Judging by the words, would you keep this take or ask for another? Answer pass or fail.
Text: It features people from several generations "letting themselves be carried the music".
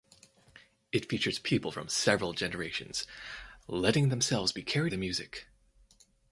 pass